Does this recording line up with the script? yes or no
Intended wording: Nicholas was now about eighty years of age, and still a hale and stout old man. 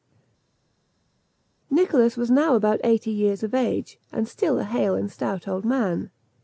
yes